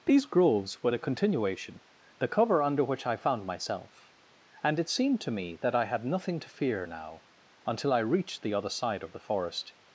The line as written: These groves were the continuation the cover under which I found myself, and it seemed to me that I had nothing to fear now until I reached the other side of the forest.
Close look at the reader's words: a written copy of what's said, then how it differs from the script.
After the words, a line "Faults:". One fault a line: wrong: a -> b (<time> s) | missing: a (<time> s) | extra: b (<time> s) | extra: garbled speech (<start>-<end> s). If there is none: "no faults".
These groves were the continuation the cover under which I found myself, and it seemed to me that I had nothing to fear now until I reached the other side of the forest.
Faults:
no faults